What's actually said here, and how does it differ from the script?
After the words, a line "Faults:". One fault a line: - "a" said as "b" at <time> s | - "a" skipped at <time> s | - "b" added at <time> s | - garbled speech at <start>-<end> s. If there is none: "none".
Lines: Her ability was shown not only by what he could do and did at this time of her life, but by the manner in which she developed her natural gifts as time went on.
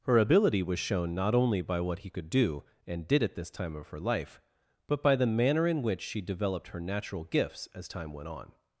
Her ability was shown not only by what he could do and did at this time of her life, but by the manner in which she developed her natural gifts as time went on.
Faults:
none